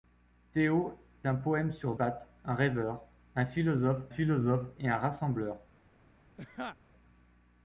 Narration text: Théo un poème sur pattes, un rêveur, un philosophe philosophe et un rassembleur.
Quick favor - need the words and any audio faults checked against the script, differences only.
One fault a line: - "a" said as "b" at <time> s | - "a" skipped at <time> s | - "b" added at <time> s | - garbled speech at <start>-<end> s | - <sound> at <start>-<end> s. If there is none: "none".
- laugh at 6.4-6.8 s